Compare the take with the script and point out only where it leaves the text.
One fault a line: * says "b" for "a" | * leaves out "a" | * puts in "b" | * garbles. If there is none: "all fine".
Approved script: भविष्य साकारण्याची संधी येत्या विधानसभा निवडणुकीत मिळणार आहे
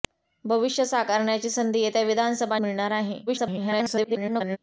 * leaves out "निवडणुकीत"
* garbles